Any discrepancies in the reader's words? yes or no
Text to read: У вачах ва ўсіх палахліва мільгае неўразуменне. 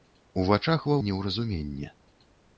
yes